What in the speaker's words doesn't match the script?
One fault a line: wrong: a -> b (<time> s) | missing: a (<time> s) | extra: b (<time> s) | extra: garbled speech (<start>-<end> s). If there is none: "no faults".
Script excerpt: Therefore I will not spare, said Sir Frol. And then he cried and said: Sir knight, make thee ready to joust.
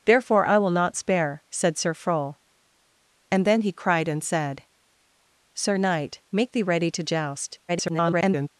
extra: garbled speech (7.7-8.5 s)